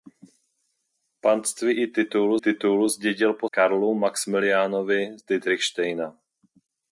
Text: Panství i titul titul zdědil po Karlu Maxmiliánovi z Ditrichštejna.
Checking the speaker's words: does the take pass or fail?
pass